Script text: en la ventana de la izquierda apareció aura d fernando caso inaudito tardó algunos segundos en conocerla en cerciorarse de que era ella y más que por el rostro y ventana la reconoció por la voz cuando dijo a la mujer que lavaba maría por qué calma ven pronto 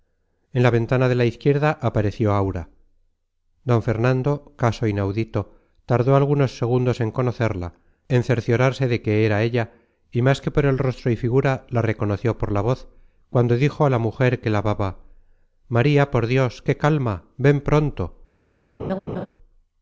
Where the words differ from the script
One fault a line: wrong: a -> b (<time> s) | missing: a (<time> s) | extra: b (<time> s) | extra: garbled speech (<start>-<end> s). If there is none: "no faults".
wrong: ventana -> figura (11.2 s)
extra: dios (16.2 s)